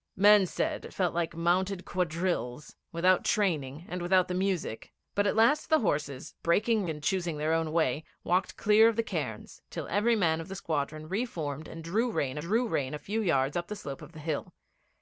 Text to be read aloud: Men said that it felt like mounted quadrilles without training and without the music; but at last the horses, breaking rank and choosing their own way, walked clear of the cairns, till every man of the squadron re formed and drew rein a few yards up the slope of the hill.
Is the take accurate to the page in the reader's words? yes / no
no